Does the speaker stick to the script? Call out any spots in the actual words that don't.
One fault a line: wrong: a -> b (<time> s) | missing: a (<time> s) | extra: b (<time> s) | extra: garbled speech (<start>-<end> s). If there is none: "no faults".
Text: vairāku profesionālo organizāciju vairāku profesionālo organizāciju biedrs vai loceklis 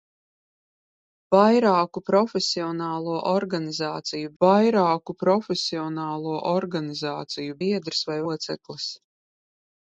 no faults